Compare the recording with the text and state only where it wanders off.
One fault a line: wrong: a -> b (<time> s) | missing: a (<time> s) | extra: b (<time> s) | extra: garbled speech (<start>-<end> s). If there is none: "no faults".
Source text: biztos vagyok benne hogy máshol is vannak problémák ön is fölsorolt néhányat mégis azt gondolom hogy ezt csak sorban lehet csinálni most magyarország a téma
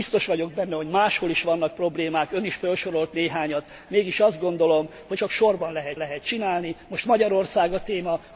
missing: ezt (5.2 s)
extra: lehet (6.0 s)